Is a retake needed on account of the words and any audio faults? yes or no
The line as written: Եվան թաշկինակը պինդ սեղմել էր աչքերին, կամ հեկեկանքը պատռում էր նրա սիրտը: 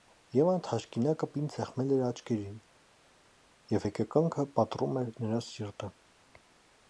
yes